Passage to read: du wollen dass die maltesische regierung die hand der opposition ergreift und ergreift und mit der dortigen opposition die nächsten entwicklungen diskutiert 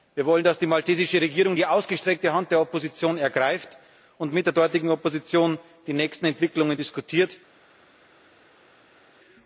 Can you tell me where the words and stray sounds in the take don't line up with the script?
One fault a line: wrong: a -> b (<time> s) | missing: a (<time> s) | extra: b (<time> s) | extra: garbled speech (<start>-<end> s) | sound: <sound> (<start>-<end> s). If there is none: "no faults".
wrong: du -> wir (0.1 s)
extra: ausgestreckte (1.7 s)
missing: ergreift und (4.3 s)